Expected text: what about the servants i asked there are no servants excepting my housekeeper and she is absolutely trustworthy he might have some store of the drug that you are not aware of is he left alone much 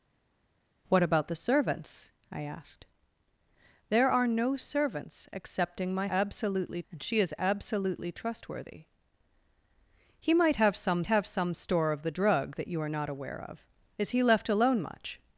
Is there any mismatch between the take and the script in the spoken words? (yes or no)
yes